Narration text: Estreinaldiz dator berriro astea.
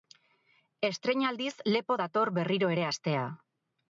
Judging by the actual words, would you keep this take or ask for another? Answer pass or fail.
fail